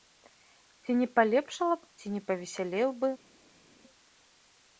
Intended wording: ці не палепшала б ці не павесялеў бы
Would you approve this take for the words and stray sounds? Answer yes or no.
yes